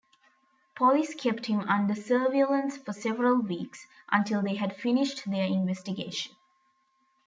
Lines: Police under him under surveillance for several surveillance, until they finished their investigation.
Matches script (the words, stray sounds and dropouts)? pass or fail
fail